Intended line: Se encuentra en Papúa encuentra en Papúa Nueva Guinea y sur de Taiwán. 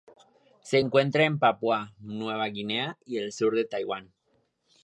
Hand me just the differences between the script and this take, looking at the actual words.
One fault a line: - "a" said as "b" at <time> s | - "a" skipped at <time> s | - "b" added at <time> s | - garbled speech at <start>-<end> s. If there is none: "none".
- "encuentra en Papúa" skipped at 1.9 s
- "el" added at 3.2 s